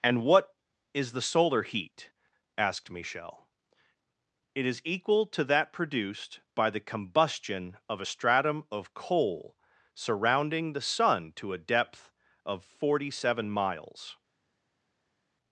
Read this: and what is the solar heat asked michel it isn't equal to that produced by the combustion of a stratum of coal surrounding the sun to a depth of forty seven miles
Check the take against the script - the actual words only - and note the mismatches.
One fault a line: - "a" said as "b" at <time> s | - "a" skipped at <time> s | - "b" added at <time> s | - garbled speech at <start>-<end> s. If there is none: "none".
- "isn't" said as "is" at 4.7 s